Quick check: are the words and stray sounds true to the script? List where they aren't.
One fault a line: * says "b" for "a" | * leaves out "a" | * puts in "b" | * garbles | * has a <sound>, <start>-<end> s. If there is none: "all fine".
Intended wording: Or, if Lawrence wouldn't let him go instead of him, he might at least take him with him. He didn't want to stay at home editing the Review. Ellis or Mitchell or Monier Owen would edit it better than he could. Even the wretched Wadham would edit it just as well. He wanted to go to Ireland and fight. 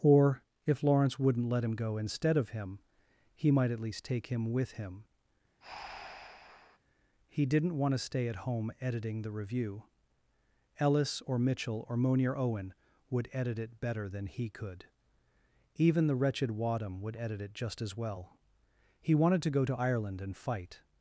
* has a breath, 5.6-6.8 s